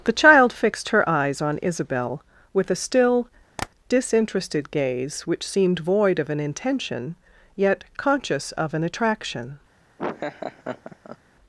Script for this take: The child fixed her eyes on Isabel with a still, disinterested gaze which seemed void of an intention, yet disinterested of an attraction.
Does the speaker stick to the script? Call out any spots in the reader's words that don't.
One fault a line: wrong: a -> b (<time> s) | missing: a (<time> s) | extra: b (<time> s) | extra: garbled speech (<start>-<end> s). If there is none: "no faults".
wrong: disinterested -> conscious (8.0 s)